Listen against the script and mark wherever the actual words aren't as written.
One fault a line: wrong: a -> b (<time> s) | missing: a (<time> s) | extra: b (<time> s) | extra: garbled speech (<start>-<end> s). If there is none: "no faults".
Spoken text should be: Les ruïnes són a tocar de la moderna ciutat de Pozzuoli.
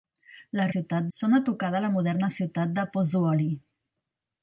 wrong: ruïnes -> ciutat (0.7 s)